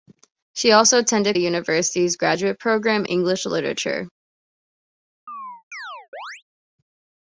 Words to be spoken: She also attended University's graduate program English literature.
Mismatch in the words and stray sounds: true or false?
true